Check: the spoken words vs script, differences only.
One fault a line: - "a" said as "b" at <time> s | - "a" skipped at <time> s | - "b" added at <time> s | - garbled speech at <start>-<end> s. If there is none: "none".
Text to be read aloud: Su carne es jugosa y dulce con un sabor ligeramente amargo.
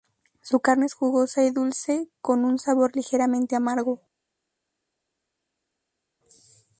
none